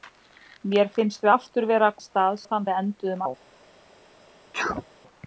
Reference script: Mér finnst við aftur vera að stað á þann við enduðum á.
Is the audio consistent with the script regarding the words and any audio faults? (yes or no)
no